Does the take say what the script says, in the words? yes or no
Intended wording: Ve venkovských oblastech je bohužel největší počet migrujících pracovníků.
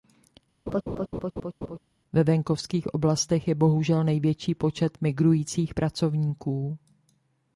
yes